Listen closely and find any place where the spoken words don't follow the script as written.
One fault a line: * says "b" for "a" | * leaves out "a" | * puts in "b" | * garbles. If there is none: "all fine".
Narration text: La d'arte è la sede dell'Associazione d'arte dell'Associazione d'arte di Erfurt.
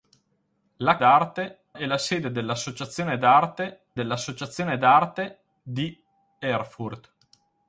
all fine